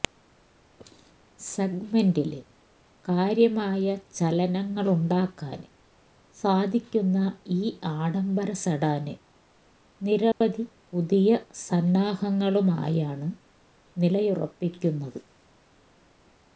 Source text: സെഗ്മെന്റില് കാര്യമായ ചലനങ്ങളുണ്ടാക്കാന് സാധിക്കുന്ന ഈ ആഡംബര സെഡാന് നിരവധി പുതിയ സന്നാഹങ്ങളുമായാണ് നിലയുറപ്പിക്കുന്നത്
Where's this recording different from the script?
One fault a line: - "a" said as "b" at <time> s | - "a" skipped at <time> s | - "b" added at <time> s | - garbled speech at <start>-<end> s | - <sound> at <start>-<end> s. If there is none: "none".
- dropout at 10.3-10.4 s